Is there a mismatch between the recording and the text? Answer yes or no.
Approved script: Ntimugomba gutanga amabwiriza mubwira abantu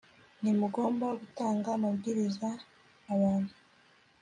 yes